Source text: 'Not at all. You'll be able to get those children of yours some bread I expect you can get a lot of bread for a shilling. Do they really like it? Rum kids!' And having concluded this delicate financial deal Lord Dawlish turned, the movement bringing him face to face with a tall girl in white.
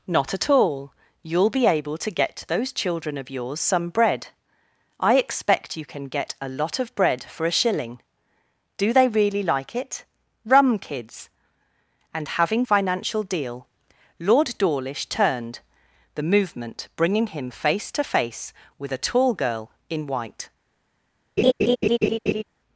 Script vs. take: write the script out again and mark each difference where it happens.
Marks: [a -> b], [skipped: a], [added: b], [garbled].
'Not at all. You'll be able to get those children of yours some bread I expect you can get a lot of bread for a shilling. Do they really like it? Rum kids!' And having [skipped: concluded this delicate] financial deal Lord Dawlish turned, the movement bringing him face to face with a tall girl in white.